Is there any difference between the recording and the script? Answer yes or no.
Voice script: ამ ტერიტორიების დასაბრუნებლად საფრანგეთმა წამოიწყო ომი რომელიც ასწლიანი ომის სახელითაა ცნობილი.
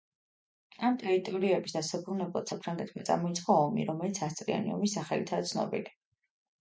no